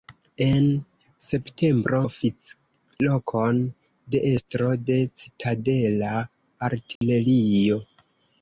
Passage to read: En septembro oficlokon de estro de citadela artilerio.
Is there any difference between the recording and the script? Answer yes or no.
no